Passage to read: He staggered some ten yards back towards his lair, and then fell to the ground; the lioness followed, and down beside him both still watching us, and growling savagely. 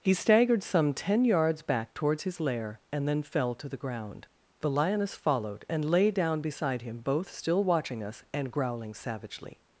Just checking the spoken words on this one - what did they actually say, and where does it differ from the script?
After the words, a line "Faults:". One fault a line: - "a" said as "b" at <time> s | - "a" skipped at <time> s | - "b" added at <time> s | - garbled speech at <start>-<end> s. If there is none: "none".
He staggered some ten yards back towards his lair, and then fell to the ground; the lioness followed, and lay down beside him both still watching us, and growling savagely.
Faults:
- "lay" added at 5.8 s